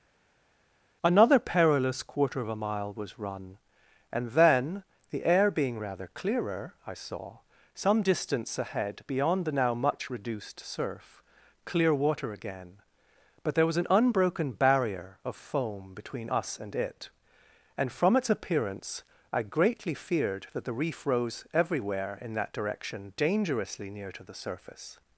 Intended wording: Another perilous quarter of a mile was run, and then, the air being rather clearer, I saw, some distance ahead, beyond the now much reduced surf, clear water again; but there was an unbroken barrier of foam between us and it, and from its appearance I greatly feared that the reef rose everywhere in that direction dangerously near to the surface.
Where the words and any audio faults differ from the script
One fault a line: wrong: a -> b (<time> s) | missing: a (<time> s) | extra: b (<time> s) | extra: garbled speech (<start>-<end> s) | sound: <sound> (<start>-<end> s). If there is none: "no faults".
no faults